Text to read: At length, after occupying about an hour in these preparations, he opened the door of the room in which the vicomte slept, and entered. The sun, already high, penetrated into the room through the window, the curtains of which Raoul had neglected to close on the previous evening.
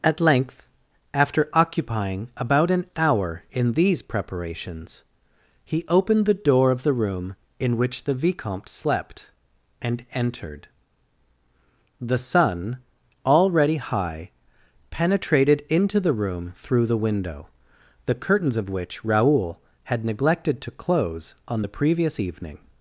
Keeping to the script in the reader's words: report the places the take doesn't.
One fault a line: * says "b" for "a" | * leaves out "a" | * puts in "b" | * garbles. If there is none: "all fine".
all fine